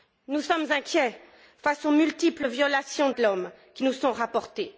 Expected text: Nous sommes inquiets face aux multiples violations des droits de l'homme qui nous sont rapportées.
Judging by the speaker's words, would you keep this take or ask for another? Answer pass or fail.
fail